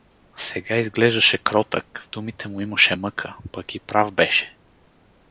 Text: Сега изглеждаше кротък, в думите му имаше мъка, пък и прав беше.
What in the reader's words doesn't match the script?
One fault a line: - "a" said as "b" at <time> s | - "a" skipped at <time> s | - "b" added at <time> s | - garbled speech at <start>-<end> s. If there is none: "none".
none